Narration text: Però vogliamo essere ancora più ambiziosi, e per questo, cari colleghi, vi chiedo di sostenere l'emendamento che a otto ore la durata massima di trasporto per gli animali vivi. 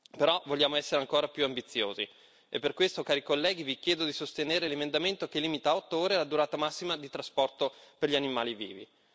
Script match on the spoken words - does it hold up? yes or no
no